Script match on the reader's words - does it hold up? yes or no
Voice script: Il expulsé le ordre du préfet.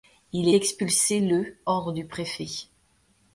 yes